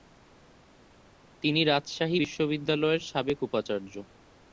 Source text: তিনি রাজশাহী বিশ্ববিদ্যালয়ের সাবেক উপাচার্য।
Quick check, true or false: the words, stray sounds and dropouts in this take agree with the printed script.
true